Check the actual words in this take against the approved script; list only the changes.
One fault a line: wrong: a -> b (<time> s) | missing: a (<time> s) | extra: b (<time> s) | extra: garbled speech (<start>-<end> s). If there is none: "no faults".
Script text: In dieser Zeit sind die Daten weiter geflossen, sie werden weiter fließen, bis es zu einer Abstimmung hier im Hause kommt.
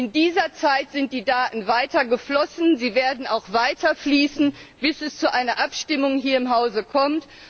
extra: auch (3.3 s)